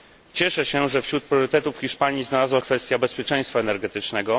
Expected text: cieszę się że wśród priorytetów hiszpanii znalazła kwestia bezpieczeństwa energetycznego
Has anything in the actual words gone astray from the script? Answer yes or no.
no